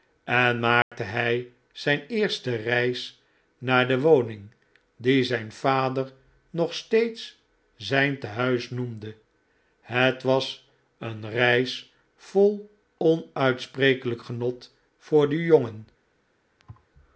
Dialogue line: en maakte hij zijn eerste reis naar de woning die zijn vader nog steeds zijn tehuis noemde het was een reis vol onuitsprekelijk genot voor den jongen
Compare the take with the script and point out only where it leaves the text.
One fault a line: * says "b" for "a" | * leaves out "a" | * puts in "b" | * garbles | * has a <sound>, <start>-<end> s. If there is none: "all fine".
* has a dropout, 0.8-0.9 s
* has a thud, 16.6-16.9 s